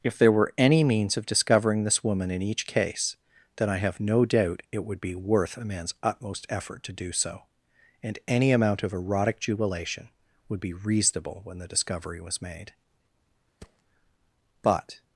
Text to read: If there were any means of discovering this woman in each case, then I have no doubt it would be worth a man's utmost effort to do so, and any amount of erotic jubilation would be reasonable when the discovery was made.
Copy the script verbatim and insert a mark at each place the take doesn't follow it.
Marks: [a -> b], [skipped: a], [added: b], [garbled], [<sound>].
If there were any means of discovering this woman in each case, then I have no doubt it would be worth a man's utmost effort to do so, and any amount of erotic jubilation would be reasonable when the discovery was made. [thud] [added: But]